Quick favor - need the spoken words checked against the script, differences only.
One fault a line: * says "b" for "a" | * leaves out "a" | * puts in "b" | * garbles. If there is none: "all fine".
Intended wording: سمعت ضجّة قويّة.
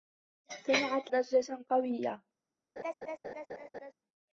all fine